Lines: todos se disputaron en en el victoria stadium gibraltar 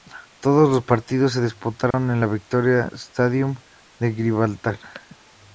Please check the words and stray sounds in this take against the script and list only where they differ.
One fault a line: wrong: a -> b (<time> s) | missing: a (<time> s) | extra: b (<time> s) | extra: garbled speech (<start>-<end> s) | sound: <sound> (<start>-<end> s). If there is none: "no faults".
extra: los partidos (0.7 s)
sound: dropout (1.9-1.9 s)
missing: en (2.2 s)
extra: de (4.0 s)